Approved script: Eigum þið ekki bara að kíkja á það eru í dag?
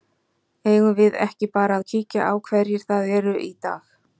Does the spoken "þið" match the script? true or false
false